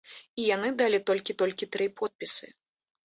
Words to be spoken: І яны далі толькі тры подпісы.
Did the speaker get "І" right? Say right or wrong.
right